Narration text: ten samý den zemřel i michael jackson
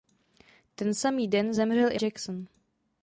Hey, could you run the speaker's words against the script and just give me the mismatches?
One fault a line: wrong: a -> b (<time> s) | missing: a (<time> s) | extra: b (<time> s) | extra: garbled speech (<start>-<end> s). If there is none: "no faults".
missing: michael (2.0 s)